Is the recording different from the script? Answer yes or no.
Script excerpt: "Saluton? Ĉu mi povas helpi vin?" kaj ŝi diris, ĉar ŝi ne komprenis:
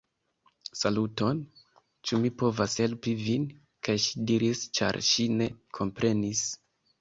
no